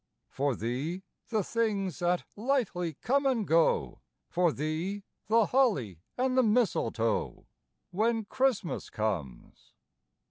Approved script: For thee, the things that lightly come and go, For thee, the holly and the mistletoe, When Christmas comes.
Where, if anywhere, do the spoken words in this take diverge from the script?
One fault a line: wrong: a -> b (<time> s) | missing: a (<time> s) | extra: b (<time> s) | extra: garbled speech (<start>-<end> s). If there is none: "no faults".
no faults